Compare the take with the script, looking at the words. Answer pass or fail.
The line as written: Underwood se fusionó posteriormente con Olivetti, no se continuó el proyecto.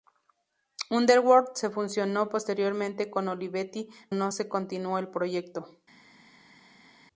pass